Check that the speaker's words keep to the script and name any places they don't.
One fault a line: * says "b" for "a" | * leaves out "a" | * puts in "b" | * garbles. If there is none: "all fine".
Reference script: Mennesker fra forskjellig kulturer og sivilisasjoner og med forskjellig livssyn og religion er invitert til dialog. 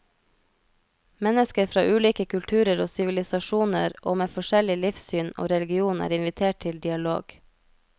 * says "ulike" for "forskjellig"